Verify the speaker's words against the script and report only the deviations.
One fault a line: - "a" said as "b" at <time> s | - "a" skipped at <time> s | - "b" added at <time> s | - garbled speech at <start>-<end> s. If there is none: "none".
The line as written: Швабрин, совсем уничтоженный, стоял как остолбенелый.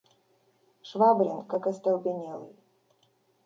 - "совсем уничтоженный стоял" skipped at 1.5 s